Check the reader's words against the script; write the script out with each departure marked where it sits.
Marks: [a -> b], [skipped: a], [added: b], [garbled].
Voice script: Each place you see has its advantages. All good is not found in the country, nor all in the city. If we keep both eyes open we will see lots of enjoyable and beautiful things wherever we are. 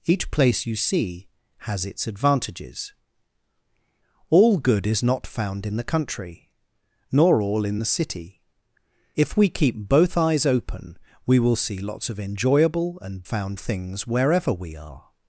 Each place you see has its advantages. All good is not found in the country, nor all in the city. If we keep both eyes open we will see lots of enjoyable and [beautiful -> found] things wherever we are.